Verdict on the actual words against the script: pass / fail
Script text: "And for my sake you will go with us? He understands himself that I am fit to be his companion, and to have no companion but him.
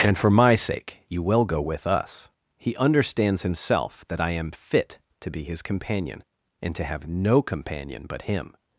pass